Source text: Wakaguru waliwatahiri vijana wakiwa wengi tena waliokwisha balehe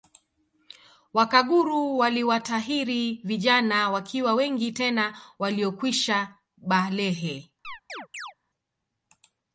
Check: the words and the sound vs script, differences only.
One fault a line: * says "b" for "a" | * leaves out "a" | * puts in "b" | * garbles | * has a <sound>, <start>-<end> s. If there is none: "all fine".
* has a chirp, 7.6-8.3 s